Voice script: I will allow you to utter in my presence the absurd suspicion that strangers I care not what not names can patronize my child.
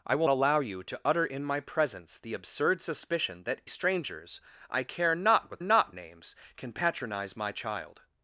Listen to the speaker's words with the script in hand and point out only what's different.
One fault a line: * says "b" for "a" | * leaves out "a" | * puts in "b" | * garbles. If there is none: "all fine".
all fine